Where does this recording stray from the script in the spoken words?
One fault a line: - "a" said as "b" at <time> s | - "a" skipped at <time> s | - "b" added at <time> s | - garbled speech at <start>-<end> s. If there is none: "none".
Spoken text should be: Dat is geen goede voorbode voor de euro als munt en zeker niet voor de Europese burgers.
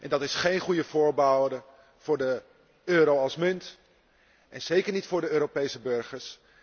none